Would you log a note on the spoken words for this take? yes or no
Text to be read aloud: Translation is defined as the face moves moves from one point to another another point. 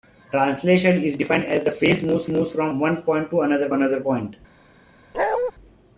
no